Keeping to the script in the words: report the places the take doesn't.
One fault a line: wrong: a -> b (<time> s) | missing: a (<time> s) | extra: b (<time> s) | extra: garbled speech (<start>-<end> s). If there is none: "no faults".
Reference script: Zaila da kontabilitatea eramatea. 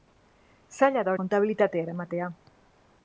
no faults